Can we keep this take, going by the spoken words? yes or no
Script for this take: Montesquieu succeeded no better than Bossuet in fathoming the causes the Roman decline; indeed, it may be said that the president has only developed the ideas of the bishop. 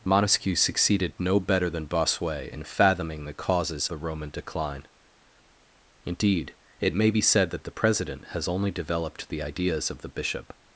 yes